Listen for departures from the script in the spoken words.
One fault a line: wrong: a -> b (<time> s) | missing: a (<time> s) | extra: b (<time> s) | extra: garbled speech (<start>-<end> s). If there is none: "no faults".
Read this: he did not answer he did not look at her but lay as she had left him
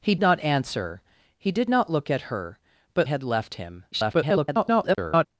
missing: did (0.1 s)
missing: lay as she (3.1 s)
extra: garbled speech (3.9-5.3 s)